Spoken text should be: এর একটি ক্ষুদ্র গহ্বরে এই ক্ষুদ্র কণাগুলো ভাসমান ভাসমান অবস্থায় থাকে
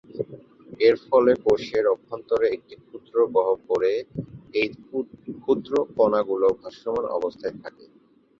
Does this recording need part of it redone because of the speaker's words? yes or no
yes